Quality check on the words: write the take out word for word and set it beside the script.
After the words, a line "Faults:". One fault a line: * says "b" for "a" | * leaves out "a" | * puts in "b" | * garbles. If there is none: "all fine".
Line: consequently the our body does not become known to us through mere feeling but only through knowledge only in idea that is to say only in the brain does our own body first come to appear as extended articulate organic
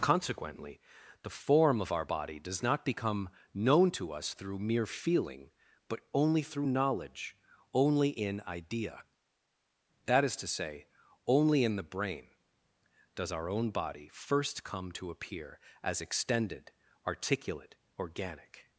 consequently the form of our body does not become known to us through mere feeling but only through knowledge only in idea that is to say only in the brain does our own body first come to appear as extended articulate organic
Faults:
* puts in "form of"